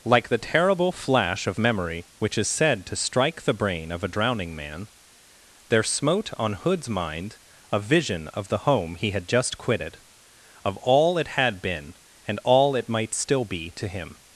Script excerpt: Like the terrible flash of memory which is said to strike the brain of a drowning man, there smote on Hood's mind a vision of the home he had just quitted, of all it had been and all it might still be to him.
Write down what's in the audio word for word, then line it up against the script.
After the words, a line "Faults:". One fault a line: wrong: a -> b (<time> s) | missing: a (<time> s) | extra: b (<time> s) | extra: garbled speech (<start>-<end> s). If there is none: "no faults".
Like the terrible flash of memory which is said to strike the brain of a drowning man, there smote on Hood's mind a vision of the home he had just quitted, of all it had been and all it might still be to him.
Faults:
no faults